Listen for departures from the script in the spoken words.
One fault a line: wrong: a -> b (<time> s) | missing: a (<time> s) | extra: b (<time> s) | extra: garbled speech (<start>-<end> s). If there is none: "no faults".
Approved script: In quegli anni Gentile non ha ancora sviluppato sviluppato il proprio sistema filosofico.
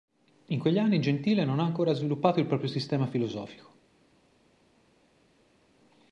missing: sviluppato (2.4 s)